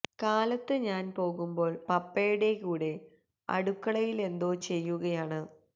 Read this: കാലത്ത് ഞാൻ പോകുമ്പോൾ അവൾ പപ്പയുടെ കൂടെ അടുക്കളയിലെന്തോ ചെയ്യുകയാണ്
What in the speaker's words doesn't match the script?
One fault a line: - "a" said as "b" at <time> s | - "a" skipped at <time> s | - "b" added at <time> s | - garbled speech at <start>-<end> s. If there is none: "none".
- "അവൾ" skipped at 1.7 s